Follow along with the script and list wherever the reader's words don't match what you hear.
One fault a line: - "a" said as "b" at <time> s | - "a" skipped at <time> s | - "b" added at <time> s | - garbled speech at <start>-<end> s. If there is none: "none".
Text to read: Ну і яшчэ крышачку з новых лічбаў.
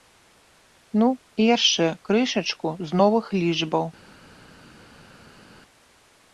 none